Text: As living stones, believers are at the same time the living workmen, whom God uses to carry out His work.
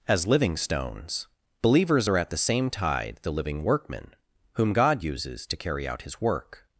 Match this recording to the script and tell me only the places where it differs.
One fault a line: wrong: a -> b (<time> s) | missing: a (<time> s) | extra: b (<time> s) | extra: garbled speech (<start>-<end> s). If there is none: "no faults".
wrong: time -> tide (2.7 s)